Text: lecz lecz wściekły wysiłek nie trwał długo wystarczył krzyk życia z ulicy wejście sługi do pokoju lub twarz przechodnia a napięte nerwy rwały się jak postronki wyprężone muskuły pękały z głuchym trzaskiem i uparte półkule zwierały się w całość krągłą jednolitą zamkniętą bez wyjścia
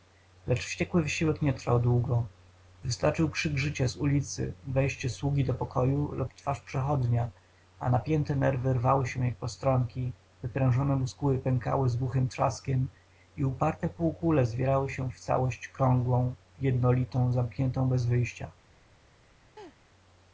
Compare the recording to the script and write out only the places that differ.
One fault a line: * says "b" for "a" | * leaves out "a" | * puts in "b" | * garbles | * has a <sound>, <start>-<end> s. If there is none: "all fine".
* leaves out "lecz"
* has a laugh, 19.6-19.8 s